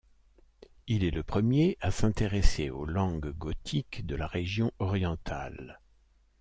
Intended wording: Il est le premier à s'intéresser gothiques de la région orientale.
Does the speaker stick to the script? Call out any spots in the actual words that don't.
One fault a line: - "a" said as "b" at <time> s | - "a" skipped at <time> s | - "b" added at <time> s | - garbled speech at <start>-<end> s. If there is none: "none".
- "aux langues" added at 2.7 s